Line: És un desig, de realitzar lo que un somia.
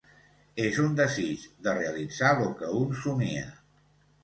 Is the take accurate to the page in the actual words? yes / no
yes